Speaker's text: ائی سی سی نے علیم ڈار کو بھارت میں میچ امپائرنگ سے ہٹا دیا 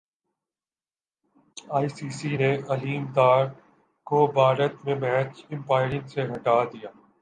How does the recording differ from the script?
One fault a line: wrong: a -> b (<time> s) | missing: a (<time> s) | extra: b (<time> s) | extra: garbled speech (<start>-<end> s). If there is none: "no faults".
no faults